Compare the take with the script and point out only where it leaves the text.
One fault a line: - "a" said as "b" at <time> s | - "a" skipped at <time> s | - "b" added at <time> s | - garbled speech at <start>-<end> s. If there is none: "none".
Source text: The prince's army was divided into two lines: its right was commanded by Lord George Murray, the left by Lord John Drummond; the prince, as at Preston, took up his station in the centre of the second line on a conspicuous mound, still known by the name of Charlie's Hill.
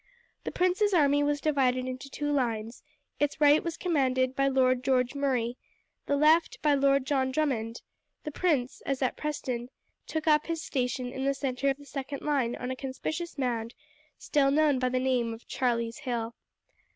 none